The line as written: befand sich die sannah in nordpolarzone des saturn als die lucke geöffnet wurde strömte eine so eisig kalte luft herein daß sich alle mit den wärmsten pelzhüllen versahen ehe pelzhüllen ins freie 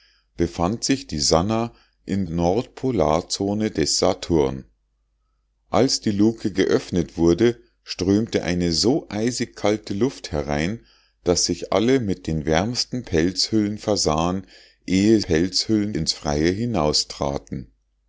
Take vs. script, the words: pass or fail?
pass